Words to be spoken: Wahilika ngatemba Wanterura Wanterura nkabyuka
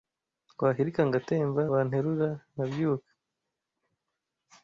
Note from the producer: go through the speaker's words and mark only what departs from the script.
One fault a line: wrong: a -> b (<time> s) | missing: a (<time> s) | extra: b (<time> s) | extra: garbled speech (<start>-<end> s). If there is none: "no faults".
missing: Wanterura (2.3 s)